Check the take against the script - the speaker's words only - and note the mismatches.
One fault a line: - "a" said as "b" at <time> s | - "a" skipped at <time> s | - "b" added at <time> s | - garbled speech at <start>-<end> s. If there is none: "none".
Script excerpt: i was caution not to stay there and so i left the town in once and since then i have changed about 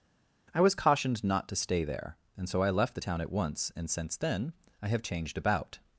- "caution" said as "cautioned" at 0.7 s
- "in" said as "at" at 3.2 s